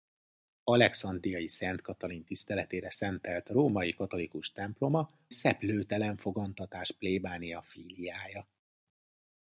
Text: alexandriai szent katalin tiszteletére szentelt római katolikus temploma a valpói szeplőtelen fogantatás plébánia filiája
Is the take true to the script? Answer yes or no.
no